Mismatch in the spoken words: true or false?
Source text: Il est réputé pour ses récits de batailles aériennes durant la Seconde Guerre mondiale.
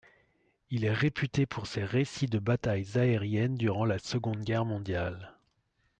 false